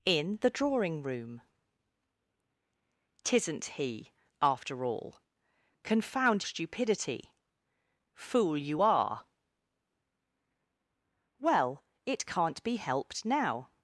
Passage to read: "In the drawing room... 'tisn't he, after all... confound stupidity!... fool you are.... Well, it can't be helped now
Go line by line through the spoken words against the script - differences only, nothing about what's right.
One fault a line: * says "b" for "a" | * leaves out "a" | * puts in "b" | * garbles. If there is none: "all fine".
all fine